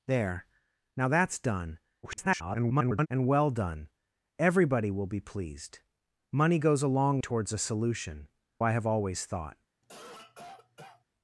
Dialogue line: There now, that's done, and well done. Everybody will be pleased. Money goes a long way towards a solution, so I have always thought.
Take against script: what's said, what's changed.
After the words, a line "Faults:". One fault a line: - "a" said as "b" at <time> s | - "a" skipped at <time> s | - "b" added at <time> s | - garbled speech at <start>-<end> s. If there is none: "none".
There now, that's done, [garbled] and well done. Everybody will be pleased. Money goes a long towards a solution, I have always thought.
Faults:
- garbled speech at 2.0-3.1 s
- "way" skipped at 7.2 s
- "so" skipped at 8.3 s